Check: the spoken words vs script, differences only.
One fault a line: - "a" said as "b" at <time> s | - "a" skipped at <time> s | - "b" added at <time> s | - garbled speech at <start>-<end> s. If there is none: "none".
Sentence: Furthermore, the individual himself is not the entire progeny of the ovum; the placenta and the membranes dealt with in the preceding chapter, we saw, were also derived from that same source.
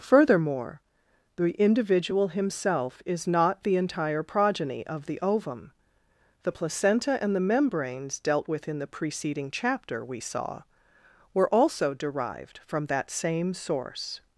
none